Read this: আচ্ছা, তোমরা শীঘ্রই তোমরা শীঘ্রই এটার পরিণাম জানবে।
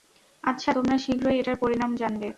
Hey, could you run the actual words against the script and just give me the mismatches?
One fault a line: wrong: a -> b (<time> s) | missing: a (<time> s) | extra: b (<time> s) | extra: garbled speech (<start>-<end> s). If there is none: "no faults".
missing: তোমরা শীঘ্রই (1.4 s)